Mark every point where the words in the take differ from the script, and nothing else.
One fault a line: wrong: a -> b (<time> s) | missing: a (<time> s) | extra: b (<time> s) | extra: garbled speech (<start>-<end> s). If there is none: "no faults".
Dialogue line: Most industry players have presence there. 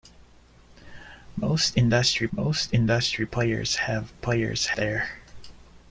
extra: most industry (2.3 s)
wrong: presence -> players (4.2 s)